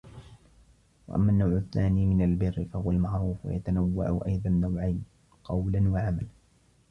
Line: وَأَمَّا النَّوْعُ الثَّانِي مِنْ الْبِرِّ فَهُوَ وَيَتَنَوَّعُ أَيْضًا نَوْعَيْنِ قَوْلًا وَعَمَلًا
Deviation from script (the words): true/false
true